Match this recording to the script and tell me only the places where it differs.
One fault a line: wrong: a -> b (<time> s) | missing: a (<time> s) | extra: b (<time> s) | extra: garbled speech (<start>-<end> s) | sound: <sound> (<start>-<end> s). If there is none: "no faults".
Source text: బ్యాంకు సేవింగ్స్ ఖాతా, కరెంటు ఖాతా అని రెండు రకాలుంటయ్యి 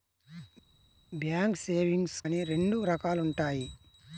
missing: ఖాతా కరెంటు ఖాతా (2.2 s)